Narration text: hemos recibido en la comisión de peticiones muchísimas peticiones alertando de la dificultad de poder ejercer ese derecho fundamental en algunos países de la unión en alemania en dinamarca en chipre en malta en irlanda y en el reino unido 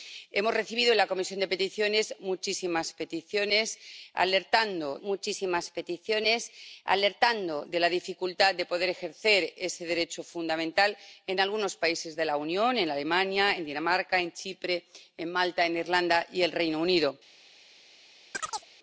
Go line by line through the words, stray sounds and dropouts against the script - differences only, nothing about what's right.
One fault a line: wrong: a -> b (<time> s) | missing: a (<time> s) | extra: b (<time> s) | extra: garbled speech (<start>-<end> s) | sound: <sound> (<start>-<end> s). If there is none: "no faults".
extra: muchísimas peticiones alertando (5.0 s)
sound: chirp (18.3-18.7 s)